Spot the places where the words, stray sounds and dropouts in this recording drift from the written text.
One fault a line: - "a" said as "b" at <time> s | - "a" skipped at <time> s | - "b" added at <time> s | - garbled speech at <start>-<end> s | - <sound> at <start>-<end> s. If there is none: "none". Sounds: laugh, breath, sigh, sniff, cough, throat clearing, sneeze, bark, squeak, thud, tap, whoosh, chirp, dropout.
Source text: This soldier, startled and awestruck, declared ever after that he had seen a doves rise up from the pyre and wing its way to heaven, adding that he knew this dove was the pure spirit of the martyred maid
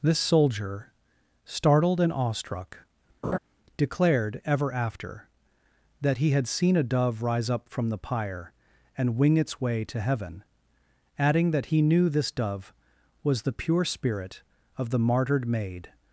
- laugh at 3.2-3.4 s
- "doves" said as "dove" at 6.8 s